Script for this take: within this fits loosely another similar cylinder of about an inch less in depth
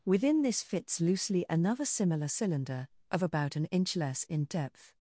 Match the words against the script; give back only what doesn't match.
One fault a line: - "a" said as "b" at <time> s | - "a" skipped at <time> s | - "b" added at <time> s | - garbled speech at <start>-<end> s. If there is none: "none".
none